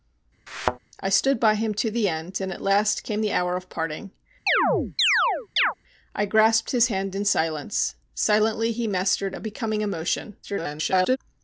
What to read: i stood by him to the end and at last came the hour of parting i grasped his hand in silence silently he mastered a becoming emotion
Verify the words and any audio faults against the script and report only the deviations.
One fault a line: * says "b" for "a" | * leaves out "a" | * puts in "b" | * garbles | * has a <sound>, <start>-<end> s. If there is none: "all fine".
* has a thud, 0.5-0.8 s
* has a chirp, 4.5-5.7 s
* garbles